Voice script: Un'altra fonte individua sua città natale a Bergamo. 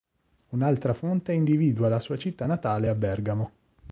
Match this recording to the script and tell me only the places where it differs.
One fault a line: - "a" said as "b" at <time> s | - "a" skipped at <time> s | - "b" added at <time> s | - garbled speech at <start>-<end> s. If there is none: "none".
- "la" added at 1.9 s